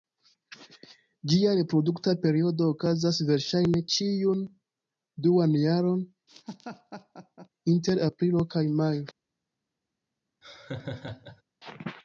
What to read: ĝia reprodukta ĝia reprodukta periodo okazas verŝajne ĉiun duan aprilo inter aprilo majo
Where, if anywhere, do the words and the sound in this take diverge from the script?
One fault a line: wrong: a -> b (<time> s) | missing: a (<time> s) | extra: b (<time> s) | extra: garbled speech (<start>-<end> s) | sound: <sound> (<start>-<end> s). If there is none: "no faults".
missing: ĝia reprodukta (2.1 s)
wrong: aprilo -> jaron (5.7 s)
sound: laugh (6.3-7.5 s)
extra: kaj (8.6 s)
sound: laugh (10.4-11.4 s)